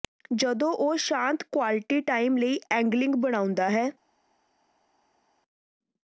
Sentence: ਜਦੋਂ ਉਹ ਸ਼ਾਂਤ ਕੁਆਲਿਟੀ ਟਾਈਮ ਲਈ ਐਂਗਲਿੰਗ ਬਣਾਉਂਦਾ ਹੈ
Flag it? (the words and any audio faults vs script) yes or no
no